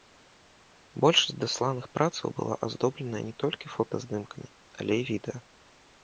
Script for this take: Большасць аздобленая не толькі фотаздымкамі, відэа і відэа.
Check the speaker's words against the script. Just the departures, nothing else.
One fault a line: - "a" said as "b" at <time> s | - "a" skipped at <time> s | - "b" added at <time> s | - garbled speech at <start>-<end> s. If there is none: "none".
- "дасланых працаў была" added at 1.4 s
- "відэа" said as "але" at 4.8 s